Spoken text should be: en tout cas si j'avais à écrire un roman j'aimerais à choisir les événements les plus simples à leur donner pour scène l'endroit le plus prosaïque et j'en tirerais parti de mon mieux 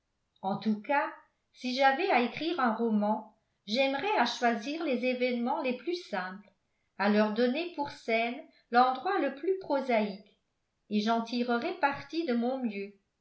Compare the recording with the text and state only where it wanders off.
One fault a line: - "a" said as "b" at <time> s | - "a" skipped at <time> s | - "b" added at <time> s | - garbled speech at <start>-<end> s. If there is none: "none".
none